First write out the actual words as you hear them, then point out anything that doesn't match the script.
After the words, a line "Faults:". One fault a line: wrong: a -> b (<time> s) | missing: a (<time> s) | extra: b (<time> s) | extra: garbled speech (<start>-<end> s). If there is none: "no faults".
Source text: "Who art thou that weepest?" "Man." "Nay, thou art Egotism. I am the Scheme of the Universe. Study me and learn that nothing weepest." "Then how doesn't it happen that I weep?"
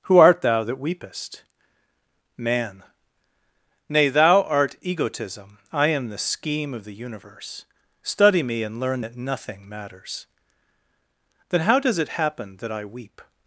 "Who art thou that weepest?" "Man." "Nay, thou art Egotism. I am the Scheme of the Universe. Study me and learn that nothing matters." "Then how does it happen that I weep?"
Faults:
wrong: weepest -> matters (9.7 s)
wrong: doesn't -> does (11.8 s)